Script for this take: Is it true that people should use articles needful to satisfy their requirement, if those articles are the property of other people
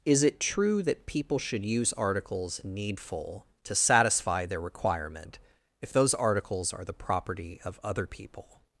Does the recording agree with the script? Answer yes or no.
yes